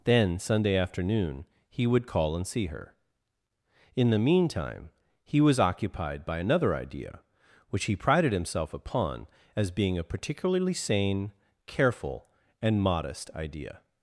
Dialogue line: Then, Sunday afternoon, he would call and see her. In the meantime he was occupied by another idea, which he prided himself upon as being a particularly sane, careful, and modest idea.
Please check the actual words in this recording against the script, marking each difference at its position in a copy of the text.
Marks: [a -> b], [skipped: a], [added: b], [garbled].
Then, Sunday afternoon, he would call and see her. In the meantime he was occupied by another idea, which he prided himself upon as being a particularly sane, careful, and modest idea.